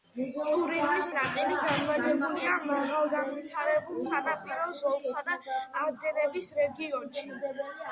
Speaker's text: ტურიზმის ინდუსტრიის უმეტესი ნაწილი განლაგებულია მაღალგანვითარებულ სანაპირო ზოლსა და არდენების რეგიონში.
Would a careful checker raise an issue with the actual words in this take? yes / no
yes